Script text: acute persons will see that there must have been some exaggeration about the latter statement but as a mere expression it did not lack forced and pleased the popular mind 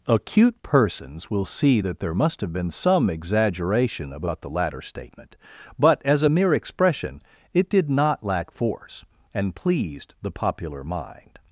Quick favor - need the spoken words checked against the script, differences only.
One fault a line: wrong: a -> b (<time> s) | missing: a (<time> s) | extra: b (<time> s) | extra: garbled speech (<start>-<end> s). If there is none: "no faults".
wrong: forced -> force (8.5 s)